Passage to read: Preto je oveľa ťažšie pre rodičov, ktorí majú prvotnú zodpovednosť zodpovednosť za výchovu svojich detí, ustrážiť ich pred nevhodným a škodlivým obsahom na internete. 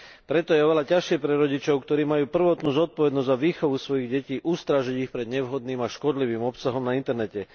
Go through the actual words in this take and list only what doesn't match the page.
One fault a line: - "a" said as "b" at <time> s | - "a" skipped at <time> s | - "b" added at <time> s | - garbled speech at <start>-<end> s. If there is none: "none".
- "zodpovednosť" skipped at 3.3 s